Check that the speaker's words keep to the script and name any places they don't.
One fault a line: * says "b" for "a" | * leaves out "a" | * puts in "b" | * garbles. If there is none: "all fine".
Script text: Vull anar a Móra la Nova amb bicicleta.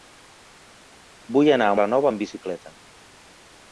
* leaves out "Móra"